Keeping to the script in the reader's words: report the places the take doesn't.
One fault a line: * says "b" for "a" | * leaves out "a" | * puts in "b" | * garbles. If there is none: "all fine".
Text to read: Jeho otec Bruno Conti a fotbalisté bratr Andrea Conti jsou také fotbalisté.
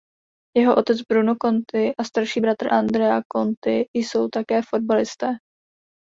* says "starší" for "fotbalisté"